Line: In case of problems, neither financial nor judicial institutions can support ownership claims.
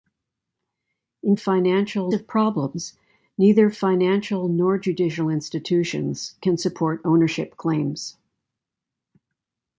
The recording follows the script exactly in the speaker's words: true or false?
false